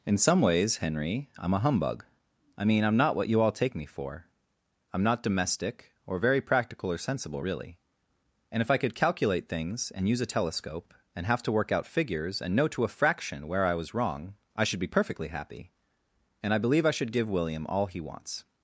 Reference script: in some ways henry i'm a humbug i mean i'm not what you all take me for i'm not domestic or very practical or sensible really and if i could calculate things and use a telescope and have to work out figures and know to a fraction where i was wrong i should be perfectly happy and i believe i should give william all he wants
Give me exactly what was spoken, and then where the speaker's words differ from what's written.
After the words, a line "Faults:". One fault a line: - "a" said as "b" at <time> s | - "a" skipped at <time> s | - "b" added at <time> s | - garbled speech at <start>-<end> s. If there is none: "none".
in some ways henry i'm a humbug i mean i'm not what you all take me for i'm not domestic or very practical or sensible really and if i could calculate things and use a telescope and have to work out figures and know to a fraction where i was wrong i should be perfectly happy and i believe i should give william all he wants
Faults:
none